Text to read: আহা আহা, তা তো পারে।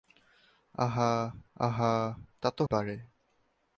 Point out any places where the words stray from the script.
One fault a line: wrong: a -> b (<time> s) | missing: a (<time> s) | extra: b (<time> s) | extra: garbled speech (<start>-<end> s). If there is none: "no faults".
no faults